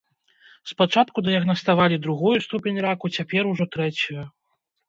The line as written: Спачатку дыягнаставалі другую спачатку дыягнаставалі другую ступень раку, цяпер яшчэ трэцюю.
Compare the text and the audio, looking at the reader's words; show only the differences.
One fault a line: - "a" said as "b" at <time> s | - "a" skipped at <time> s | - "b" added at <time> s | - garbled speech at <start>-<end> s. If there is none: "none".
- "спачатку дыягнаставалі другую" skipped at 2.3 s
- "яшчэ" said as "ужо" at 3.5 s